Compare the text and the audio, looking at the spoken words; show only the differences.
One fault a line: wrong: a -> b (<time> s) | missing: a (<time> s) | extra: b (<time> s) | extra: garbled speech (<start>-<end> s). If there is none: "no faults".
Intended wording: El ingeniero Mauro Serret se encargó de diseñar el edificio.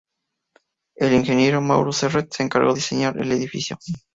missing: de (2.7 s)